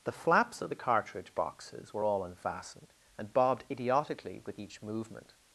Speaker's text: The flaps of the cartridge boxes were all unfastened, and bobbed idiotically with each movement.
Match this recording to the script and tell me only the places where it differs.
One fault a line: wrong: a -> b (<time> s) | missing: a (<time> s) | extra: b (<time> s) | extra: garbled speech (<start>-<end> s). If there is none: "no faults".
no faults